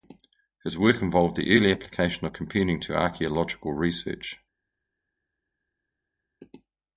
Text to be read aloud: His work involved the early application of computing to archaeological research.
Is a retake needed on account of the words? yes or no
no